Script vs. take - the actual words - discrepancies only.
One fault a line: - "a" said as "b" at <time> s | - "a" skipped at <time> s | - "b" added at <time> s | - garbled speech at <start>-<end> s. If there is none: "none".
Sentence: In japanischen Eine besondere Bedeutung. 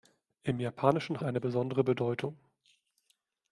none